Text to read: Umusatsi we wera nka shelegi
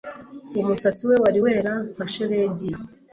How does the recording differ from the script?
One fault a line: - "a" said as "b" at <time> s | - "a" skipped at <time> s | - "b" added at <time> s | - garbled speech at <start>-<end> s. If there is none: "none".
- "wari" added at 1.2 s